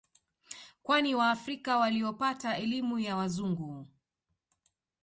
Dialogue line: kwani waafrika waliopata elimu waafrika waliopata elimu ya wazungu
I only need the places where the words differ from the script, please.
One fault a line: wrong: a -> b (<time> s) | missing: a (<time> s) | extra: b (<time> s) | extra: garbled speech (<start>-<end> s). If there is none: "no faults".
missing: waafrika waliopata elimu (3.0 s)